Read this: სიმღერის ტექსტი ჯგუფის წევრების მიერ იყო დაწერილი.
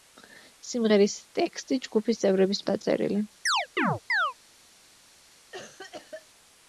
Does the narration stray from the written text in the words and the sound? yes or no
yes